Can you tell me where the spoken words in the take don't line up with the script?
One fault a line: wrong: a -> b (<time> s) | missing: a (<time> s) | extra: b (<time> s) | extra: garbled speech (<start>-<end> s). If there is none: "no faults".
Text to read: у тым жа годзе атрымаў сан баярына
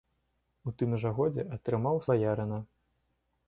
missing: сан (2.0 s)